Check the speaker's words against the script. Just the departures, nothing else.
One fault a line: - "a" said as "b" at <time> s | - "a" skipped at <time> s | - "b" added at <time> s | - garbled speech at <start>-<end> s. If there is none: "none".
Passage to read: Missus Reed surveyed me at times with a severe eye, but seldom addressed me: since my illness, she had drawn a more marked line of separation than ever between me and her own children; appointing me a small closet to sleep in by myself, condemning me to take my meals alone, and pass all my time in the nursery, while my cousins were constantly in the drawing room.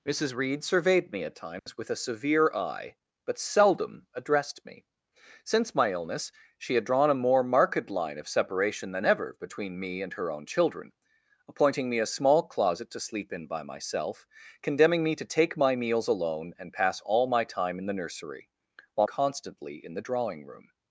- "my cousins were" skipped at 19.1 s